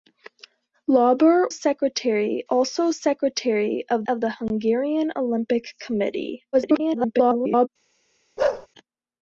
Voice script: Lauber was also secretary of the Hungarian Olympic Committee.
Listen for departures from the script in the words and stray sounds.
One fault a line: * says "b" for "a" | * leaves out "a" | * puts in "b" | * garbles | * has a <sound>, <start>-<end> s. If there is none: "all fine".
* says "secretary" for "was"
* puts in "of"
* garbles
* has a bark, 8.4-8.7 s